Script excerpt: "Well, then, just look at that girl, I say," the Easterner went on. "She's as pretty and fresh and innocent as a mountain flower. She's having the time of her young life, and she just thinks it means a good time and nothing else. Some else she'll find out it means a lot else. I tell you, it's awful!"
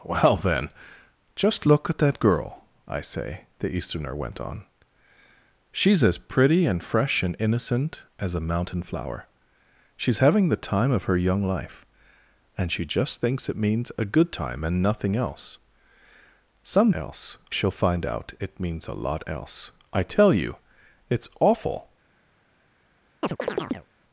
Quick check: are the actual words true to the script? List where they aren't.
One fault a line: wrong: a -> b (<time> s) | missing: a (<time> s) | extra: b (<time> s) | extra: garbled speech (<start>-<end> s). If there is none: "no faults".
no faults